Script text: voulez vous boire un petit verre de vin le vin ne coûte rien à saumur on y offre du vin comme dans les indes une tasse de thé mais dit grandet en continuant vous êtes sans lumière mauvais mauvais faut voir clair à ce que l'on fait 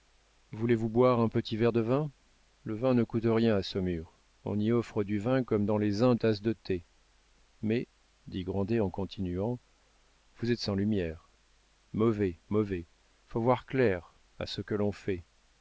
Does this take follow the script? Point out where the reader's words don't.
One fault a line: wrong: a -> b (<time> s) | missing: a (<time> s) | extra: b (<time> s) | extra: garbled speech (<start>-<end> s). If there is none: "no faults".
missing: une (6.2 s)